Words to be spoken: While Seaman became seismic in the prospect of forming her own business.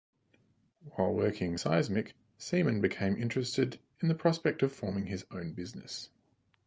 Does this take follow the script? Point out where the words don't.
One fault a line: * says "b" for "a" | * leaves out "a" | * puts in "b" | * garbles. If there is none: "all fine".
* puts in "working seismic"
* says "interested" for "seismic"
* says "his" for "her"